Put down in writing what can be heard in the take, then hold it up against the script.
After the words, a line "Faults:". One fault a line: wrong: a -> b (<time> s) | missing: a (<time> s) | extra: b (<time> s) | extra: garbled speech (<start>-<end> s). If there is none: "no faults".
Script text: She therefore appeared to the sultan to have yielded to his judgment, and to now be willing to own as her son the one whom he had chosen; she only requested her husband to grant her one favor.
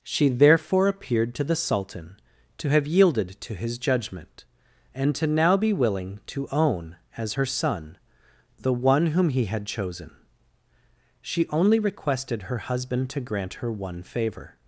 She therefore appeared to the sultan to have yielded to his judgment, and to now be willing to own as her son the one whom he had chosen; she only requested her husband to grant her one favor.
Faults:
no faults